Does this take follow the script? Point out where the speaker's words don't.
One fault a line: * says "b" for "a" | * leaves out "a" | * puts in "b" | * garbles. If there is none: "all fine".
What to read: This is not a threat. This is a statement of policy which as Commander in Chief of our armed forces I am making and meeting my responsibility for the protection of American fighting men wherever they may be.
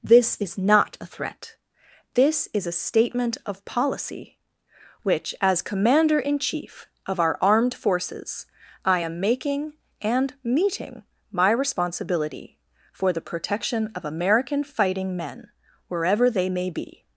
all fine